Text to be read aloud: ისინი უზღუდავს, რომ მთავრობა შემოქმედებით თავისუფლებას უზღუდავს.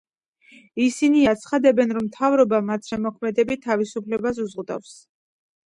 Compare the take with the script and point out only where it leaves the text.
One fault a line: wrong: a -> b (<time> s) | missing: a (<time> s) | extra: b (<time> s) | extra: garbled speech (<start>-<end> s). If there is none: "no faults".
wrong: უზღუდავს -> აცხადებენ (1.3 s)
extra: მათ (2.7 s)